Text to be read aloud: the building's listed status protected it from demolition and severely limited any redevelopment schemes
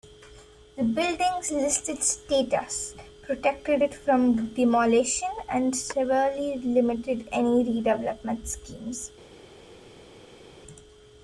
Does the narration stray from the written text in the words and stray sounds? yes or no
no